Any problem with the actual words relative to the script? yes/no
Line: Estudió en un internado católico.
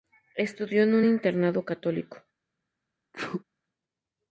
no